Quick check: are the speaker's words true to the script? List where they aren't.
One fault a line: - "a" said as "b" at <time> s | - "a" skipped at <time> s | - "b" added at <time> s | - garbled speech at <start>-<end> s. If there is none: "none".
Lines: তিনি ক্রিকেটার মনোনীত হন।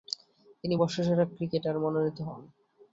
- "বর্ষসেরা" added at 0.7 s